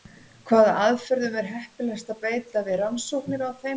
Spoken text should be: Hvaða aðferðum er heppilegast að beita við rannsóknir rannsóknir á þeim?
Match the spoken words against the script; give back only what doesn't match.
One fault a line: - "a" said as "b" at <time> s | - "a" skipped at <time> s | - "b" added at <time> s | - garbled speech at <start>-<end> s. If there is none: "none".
- "rannsóknir" skipped at 3.5 s